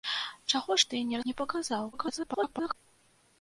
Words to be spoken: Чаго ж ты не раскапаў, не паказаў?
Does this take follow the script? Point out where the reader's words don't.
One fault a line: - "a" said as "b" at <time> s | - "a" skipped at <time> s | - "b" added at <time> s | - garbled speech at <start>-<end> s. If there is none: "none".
- "раскапаў" skipped at 1.2 s
- garbled speech at 1.9-2.7 s